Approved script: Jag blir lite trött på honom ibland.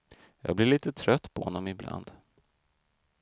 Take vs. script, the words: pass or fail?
pass